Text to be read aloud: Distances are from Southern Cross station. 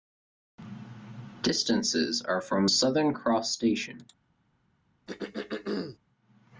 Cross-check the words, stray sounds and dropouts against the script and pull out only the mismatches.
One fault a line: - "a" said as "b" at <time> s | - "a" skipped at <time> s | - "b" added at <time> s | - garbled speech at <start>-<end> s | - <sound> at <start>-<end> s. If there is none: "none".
- throat clearing at 5.1-6.0 s